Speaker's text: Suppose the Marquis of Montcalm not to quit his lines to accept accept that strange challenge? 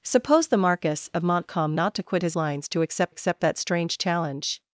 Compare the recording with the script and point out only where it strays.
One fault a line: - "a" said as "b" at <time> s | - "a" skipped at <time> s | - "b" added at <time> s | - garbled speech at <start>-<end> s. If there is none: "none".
none